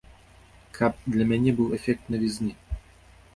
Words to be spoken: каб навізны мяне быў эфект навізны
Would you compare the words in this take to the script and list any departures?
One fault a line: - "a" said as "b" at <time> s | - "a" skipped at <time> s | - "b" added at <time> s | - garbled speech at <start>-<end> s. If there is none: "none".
- "навізны" said as "для" at 1.1 s